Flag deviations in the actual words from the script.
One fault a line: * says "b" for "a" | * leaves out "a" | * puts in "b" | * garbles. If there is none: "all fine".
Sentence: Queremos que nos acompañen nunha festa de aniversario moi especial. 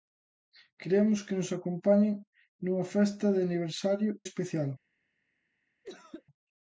* leaves out "moi"